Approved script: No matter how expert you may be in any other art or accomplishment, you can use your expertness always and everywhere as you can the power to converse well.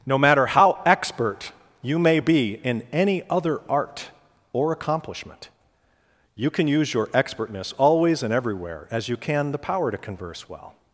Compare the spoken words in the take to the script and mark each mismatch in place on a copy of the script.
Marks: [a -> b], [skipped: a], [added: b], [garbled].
No matter how expert you may be in any other art or accomplishment, you can use your expertness always and everywhere as you can the power to converse well.